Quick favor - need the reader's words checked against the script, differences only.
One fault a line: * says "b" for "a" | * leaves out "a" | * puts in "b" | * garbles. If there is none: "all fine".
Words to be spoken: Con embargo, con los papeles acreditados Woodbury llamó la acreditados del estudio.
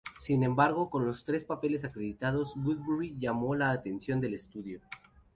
* says "Sin" for "Con"
* puts in "tres"
* says "atención" for "acreditados"